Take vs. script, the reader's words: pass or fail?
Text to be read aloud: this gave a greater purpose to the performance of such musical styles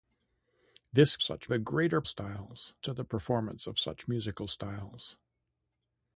fail